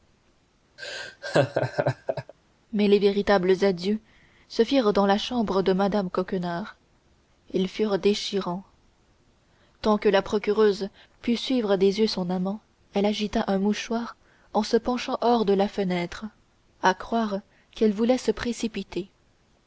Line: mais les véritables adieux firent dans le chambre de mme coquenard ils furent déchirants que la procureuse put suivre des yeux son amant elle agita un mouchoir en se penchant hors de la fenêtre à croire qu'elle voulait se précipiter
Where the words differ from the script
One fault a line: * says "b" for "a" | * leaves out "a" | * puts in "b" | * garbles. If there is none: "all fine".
* puts in "se"
* says "la" for "le"
* puts in "tant"